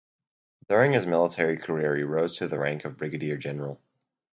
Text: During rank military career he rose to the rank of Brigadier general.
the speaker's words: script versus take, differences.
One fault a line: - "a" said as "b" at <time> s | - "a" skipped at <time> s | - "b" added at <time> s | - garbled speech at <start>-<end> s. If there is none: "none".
- "rank" said as "his" at 0.9 s